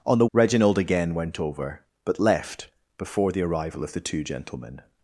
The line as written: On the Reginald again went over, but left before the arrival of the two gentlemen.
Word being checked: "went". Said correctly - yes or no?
yes